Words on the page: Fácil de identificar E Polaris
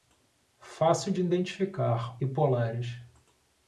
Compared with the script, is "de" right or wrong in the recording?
right